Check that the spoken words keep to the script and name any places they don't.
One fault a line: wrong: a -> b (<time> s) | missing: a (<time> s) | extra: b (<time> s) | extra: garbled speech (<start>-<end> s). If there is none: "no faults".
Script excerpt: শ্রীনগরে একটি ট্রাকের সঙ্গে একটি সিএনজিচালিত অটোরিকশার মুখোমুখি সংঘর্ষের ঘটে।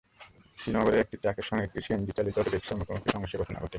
extra: ঘটনা (3.4 s)